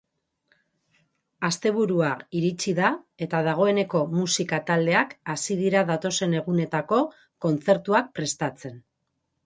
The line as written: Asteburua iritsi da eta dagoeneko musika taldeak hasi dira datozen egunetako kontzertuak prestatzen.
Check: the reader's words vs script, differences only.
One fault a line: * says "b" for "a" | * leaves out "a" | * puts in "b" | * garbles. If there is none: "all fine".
all fine